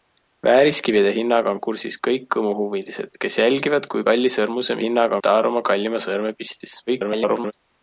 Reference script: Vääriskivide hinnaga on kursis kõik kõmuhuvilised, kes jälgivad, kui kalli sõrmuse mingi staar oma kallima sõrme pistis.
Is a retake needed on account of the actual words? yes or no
yes